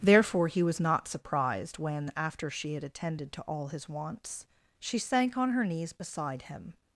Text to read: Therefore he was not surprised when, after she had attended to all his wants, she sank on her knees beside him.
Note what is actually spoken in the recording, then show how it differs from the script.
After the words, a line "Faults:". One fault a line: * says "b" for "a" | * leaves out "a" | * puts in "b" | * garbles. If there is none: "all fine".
Therefore he was not surprised when, after she had attended to all his wants, she sank on her knees beside him.
Faults:
all fine